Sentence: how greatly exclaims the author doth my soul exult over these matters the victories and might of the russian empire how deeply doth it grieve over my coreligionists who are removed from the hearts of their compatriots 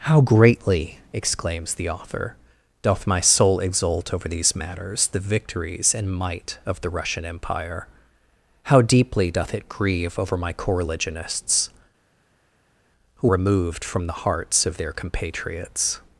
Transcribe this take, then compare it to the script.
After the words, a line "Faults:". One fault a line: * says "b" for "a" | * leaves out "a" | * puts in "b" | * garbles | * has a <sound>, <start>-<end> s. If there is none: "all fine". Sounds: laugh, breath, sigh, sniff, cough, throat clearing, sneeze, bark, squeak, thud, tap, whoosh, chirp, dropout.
how greatly exclaims the author doth my soul exult over these matters the victories and might of the russian empire how deeply doth it grieve over my coreligionists who removed from the hearts of their compatriots
Faults:
* leaves out "are"